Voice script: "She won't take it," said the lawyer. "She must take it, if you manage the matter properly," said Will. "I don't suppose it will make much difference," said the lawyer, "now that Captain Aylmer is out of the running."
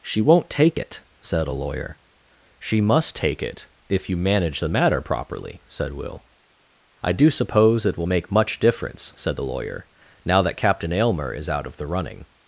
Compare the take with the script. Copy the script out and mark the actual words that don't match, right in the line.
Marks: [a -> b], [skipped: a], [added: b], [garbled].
"She won't take it," said [the -> a] lawyer. "She must take it, if you manage the matter properly," said Will. "I [don't -> do] suppose it will make much difference," said the lawyer, "now that Captain Aylmer is out of the running."